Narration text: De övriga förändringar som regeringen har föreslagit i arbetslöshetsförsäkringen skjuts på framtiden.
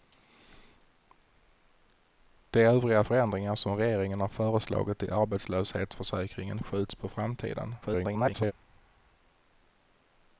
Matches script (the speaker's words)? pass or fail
fail